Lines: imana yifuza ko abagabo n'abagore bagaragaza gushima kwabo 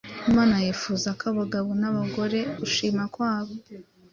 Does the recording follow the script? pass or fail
fail